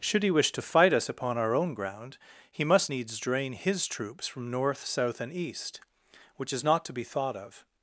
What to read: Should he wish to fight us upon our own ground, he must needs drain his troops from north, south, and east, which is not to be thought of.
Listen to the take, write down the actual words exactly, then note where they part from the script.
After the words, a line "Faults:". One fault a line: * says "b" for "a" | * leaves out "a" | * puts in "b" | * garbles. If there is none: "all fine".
Should he wish to fight us upon our own ground, he must needs drain his troops from north, south, and east, which is not to be thought of.
Faults:
all fine